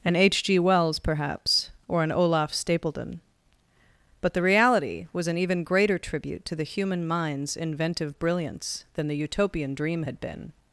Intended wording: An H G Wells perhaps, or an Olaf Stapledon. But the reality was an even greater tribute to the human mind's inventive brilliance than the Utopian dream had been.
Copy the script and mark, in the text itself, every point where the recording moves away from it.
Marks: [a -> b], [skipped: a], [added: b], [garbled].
An H G Wells perhaps, or an Olaf Stapledon. But the reality was an even greater tribute to the human mind's inventive brilliance than the Utopian dream had been.